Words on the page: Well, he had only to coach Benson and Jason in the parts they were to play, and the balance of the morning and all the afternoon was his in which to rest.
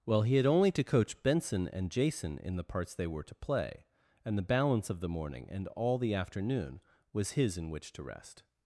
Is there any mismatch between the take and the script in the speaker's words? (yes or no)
no